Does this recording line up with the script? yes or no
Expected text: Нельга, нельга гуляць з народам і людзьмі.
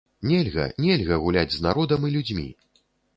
yes